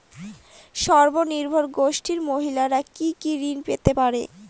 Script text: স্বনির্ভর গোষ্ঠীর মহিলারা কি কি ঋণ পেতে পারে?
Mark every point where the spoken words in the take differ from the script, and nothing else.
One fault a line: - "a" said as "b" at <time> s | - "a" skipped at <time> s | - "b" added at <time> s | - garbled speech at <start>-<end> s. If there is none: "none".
none